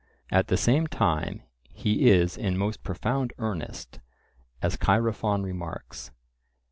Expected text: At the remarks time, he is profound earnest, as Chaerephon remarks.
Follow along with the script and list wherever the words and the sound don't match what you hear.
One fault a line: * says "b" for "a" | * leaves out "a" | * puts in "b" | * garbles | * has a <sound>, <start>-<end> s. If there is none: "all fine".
* says "same" for "remarks"
* puts in "in most"